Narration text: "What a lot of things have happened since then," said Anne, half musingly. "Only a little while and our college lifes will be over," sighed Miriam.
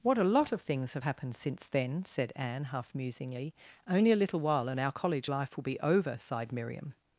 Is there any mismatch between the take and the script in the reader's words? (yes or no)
yes